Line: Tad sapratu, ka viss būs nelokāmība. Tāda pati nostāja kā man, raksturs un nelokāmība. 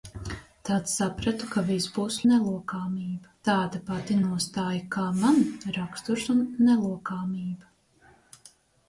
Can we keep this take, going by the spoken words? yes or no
yes